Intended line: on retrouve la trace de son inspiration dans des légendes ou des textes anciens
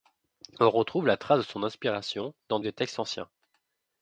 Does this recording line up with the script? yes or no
no